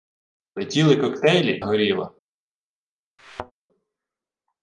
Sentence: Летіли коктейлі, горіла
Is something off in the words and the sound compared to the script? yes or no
yes